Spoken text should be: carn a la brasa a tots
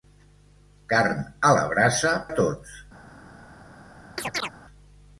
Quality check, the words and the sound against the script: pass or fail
fail